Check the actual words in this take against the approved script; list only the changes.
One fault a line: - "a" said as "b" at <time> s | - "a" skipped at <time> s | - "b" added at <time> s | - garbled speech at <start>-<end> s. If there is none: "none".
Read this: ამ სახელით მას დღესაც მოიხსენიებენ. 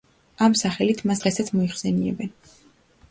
none